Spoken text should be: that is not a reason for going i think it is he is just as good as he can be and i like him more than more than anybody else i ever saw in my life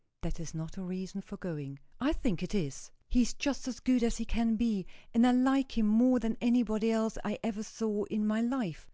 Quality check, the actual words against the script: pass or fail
fail